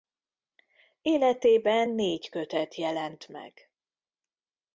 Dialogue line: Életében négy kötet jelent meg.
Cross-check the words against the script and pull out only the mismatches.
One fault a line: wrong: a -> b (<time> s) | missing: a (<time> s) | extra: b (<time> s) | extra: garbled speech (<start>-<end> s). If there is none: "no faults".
no faults